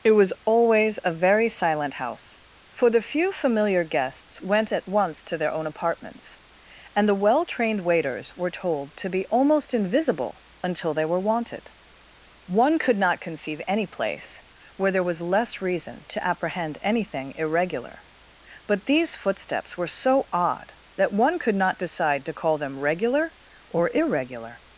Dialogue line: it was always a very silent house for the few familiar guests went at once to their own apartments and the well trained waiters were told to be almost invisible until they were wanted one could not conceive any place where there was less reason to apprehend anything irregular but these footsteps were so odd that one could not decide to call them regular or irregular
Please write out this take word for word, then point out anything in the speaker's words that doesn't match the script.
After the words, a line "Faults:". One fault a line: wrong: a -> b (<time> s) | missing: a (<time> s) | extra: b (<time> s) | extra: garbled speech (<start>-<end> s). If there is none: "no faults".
it was always a very silent house for the few familiar guests went at once to their own apartments and the well trained waiters were told to be almost invisible until they were wanted one could not conceive any place where there was less reason to apprehend anything irregular but these footsteps were so odd that one could not decide to call them regular or irregular
Faults:
no faults